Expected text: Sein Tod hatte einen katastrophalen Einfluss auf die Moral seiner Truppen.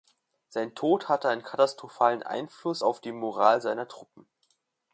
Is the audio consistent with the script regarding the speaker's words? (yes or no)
yes